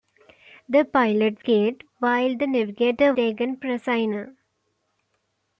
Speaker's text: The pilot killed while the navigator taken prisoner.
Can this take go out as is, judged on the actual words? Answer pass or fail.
pass